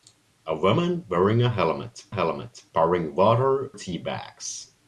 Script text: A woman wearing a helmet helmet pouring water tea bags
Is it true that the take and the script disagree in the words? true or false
false